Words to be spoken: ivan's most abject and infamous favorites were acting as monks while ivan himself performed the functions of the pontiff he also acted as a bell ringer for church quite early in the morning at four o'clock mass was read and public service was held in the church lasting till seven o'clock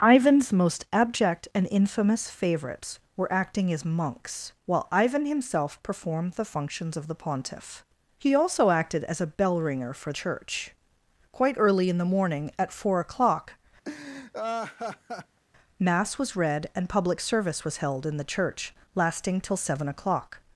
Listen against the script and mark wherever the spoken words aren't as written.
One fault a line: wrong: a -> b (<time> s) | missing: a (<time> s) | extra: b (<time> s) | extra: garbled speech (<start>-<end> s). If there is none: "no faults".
no faults